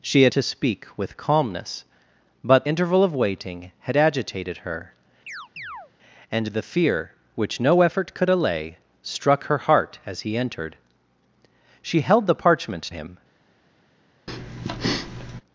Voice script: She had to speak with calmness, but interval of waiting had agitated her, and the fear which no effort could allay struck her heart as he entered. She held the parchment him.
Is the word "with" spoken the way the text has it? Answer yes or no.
yes